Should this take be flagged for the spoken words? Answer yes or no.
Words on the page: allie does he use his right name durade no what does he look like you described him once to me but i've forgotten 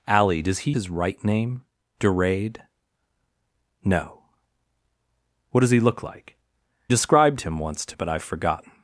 yes